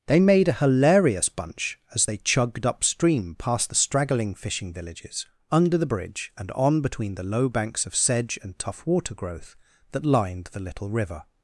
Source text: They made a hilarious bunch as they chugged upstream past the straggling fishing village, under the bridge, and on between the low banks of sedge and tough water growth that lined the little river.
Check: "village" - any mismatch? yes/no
yes